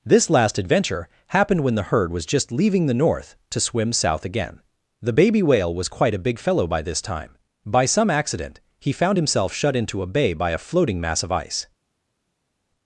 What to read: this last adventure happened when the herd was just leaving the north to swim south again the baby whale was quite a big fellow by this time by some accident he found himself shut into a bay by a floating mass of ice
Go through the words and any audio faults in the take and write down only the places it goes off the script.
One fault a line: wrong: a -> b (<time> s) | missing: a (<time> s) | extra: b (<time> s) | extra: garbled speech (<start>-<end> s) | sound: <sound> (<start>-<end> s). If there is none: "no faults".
no faults